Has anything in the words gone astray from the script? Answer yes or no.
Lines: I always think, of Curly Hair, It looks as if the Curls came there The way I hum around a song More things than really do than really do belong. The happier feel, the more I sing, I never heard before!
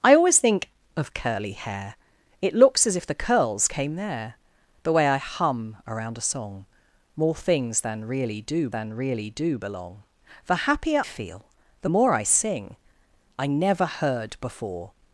no